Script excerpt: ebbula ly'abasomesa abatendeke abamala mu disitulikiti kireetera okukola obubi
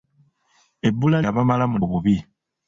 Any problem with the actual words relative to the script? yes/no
yes